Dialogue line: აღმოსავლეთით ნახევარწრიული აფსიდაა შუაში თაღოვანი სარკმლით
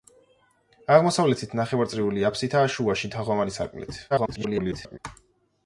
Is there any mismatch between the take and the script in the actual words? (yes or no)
yes